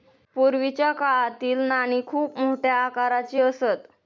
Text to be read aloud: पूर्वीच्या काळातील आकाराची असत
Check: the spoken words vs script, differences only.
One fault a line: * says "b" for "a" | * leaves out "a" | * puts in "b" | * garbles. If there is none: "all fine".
* puts in "नाणी खूप मोठ्या"